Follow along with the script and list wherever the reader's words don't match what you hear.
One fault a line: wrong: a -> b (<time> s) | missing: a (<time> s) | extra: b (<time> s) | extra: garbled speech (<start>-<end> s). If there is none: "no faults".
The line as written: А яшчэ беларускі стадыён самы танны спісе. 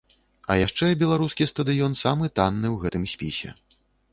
extra: ў гэтым (2.7 s)